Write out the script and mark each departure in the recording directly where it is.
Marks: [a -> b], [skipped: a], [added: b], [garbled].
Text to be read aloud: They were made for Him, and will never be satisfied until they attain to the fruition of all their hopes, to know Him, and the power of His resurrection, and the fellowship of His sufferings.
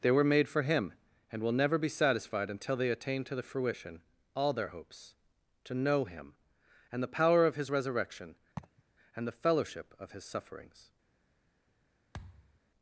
They were made for Him, and will never be satisfied until they attain to the fruition [skipped: of] all their hopes, to know Him, and the power of His resurrection, and the fellowship of His sufferings.